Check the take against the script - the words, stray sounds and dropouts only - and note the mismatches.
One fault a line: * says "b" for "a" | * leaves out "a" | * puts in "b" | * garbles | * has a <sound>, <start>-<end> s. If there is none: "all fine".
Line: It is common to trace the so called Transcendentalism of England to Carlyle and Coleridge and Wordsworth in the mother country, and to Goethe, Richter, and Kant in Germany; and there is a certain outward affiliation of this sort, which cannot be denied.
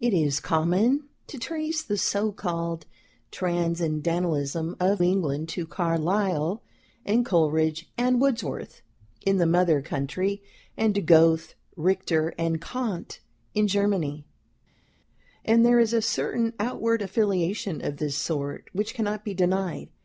all fine